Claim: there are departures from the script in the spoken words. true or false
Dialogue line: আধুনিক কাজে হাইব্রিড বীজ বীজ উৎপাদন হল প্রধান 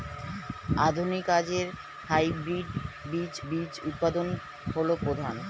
false